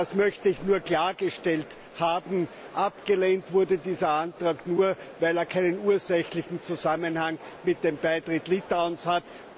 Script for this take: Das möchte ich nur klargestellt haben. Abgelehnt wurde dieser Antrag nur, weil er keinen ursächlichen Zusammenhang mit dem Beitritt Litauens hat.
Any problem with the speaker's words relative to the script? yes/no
no